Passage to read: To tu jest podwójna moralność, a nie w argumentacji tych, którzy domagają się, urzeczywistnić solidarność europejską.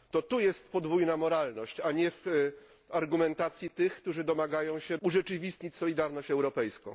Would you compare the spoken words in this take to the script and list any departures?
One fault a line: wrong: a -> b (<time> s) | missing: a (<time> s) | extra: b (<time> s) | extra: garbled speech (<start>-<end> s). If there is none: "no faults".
no faults